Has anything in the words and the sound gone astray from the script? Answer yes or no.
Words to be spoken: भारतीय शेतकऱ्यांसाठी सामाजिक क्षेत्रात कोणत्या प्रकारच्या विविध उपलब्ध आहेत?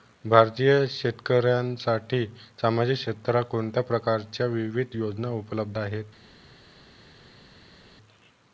yes